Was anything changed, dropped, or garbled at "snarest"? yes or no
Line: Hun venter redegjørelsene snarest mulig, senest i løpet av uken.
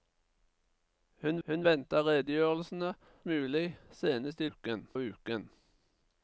yes